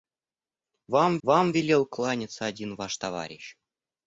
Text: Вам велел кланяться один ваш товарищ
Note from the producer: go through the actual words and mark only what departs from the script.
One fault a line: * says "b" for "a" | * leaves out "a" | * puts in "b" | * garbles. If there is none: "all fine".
* puts in "вам"